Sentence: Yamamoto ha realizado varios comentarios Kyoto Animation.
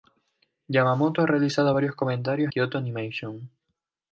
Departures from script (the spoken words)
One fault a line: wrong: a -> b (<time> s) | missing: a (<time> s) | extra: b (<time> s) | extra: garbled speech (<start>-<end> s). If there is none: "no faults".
no faults